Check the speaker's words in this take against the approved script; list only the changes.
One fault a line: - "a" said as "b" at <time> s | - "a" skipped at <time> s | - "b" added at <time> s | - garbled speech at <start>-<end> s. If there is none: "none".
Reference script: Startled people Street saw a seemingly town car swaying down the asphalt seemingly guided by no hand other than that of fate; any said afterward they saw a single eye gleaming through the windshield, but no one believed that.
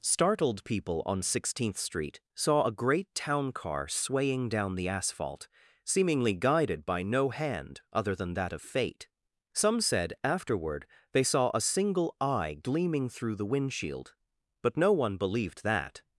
- "on Sixteenth" added at 1.1 s
- "seemingly" said as "great" at 2.7 s
- "any" said as "some" at 9.5 s